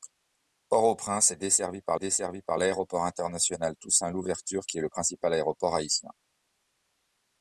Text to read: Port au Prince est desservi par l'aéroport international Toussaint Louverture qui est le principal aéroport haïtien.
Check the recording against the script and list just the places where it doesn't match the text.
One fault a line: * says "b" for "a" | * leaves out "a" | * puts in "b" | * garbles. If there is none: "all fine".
* puts in "desservi par"